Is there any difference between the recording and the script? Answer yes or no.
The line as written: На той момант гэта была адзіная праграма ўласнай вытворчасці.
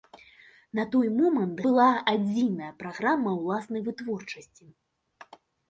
yes